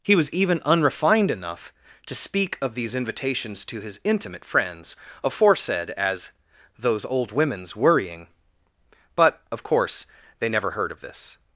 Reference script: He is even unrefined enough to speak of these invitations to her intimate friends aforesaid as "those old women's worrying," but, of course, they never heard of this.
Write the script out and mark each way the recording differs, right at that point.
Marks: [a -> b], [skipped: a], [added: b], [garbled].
He [is -> was] even unrefined enough to speak of these invitations to [her -> his] intimate friends aforesaid as "those old women's worrying," but, of course, they never heard of this.